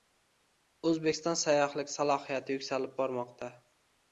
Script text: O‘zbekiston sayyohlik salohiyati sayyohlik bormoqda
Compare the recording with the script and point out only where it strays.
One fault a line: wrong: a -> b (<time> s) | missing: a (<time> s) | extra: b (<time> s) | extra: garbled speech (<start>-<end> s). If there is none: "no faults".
wrong: sayyohlik -> yuksalib (2.6 s)